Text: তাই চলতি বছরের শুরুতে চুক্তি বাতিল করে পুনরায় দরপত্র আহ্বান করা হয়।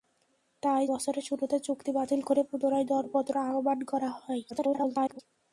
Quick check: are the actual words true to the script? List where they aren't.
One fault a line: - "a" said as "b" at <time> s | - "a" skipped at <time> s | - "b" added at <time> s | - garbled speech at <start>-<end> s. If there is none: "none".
- "চলতি" skipped at 0.8 s
- garbled speech at 4.5-5.2 s